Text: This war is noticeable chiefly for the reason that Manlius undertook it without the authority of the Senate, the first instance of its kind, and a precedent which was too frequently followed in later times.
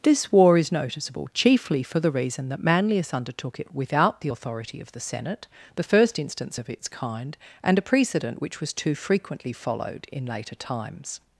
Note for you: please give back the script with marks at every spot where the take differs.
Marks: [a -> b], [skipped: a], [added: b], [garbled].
This war is noticeable chiefly for the reason that Manlius undertook it without the authority of the Senate, the first instance of its kind, and a precedent which was too frequently followed in later times.